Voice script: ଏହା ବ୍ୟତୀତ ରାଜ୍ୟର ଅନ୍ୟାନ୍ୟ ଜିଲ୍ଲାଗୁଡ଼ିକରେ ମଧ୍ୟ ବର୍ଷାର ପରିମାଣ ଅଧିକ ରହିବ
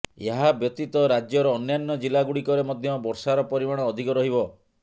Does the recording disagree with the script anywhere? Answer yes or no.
no